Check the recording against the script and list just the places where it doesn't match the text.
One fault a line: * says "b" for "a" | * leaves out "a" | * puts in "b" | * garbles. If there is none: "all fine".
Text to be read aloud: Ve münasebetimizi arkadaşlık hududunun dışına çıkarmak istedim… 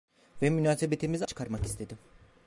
* leaves out "arkadaşlık hududunun dışına"